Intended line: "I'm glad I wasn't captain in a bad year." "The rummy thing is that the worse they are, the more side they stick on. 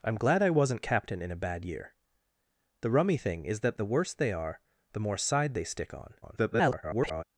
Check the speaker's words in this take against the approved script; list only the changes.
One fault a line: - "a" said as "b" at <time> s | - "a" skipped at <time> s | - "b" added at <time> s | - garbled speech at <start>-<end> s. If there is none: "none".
- garbled speech at 6.2-7.2 s